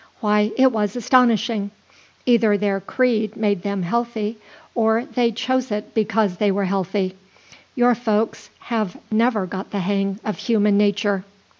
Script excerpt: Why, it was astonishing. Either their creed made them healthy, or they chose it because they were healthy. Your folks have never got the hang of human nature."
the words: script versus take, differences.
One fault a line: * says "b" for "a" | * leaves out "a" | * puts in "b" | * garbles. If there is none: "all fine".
all fine